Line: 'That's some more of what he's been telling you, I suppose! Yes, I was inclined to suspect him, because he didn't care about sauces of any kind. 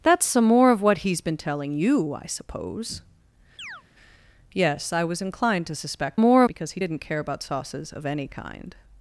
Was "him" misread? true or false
true